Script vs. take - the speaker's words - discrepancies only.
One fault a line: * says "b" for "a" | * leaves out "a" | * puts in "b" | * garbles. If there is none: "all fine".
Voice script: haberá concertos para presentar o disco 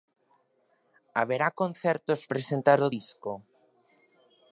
* leaves out "para"